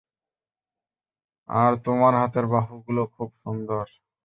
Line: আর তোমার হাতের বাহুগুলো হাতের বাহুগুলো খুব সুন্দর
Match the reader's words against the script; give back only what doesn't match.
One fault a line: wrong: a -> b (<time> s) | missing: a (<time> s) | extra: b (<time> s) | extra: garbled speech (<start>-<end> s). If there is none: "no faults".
missing: হাতের বাহুগুলো (3.0 s)